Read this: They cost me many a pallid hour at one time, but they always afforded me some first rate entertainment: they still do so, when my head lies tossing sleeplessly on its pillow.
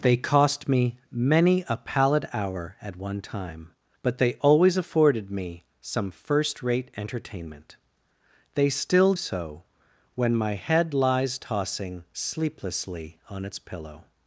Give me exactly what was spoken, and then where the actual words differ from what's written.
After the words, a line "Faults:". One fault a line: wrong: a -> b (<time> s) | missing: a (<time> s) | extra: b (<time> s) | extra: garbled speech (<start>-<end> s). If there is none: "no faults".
They cost me many a pallid hour at one time, but they always afforded me some first rate entertainment: they still so, when my head lies tossing sleeplessly on its pillow.
Faults:
missing: do (9.1 s)